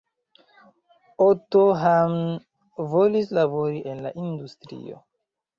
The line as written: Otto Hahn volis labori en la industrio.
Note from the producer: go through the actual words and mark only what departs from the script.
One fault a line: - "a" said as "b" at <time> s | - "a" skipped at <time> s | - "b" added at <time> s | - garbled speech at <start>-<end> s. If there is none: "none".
none